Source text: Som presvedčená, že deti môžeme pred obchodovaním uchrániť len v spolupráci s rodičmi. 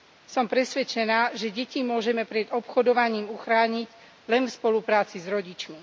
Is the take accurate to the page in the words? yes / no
yes